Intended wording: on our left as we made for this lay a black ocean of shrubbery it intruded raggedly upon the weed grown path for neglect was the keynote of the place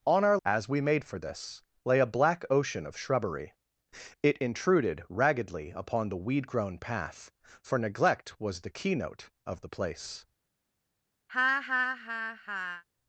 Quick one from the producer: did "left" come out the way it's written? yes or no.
no